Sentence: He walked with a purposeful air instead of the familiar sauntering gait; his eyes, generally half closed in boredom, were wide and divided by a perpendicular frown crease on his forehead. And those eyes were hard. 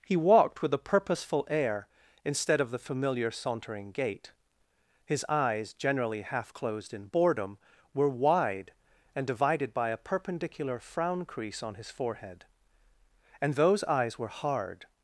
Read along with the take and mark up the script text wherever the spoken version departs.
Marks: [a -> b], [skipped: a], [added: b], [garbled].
He walked with a purposeful air instead of the familiar sauntering gait; his eyes, generally half closed in boredom, were wide and divided by a perpendicular frown crease on his forehead. And those eyes were hard.